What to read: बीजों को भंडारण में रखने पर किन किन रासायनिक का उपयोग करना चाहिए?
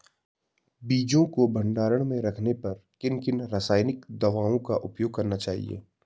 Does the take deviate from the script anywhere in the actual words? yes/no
yes